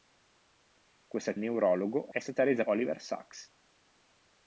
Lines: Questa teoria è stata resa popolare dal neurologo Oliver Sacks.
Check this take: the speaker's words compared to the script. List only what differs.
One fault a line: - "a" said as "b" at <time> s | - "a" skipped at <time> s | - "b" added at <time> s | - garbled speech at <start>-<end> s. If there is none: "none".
- "teoria" said as "neurologo" at 1.4 s
- "popolare dal neurologo" skipped at 2.6 s